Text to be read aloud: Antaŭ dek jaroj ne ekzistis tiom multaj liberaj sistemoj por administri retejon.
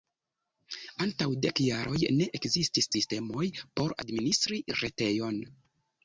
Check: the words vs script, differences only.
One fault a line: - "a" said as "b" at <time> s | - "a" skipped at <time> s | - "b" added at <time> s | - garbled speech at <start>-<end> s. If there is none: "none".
- "tiom multaj liberaj" skipped at 2.9 s